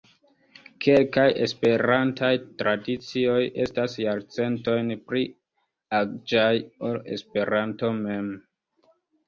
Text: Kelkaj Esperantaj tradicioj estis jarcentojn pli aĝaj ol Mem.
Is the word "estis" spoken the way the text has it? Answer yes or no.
no